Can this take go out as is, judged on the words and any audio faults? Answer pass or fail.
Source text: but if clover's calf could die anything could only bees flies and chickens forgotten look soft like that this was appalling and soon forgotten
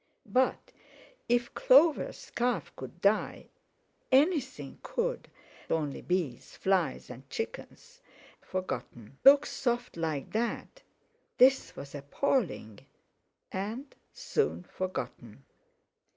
pass